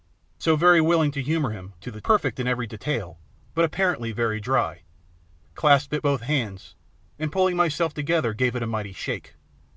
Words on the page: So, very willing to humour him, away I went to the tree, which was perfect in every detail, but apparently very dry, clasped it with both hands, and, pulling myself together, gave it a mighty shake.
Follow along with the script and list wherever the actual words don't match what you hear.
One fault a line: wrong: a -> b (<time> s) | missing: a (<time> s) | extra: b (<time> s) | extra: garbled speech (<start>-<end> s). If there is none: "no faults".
missing: away I went (1.7 s)
missing: tree which was (2.0 s)
missing: with (6.0 s)